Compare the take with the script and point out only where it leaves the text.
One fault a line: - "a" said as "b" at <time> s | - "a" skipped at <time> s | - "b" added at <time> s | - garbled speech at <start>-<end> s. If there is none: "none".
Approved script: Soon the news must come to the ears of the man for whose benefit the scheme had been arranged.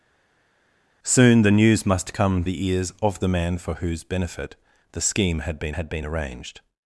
- "to" skipped at 2.5 s
- "had been" added at 5.7 s